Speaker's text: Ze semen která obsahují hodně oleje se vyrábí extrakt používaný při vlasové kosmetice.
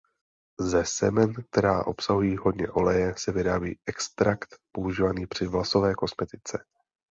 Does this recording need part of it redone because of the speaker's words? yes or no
no